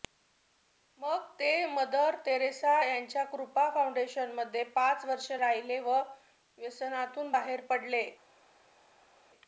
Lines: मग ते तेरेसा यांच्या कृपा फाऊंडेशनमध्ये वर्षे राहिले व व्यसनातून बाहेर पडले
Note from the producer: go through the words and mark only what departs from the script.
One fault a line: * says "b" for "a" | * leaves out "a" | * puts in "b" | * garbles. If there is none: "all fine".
* puts in "मदर"
* puts in "पाच"